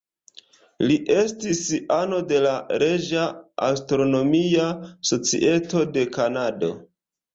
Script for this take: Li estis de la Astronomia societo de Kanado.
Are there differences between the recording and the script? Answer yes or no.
yes